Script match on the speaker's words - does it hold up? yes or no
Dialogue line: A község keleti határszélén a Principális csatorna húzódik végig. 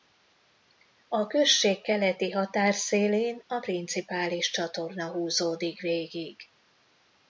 yes